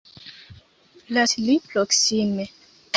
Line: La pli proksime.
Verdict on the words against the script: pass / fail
pass